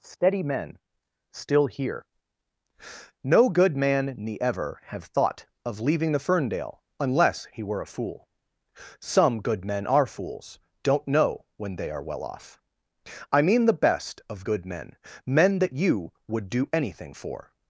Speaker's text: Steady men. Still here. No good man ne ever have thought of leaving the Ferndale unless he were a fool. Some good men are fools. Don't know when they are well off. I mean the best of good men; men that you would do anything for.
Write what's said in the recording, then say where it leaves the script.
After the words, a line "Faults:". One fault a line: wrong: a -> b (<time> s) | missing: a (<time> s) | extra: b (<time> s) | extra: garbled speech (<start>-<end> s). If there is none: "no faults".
Steady men. Still here. No good man ne ever have thought of leaving the Ferndale unless he were a fool. Some good men are fools. Don't know when they are well off. I mean the best of good men; men that you would do anything for.
Faults:
no faults